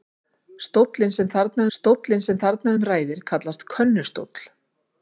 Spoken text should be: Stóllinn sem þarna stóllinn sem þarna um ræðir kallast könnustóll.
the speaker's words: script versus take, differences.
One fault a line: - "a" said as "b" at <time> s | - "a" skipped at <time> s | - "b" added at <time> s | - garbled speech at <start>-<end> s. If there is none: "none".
none